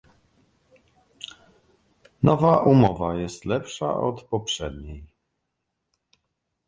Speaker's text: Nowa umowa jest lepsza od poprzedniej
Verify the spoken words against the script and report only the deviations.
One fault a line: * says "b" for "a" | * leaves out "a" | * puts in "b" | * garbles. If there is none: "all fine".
all fine